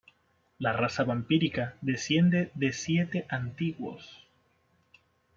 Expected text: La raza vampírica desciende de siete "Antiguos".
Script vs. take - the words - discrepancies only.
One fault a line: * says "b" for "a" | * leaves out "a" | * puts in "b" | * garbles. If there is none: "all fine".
all fine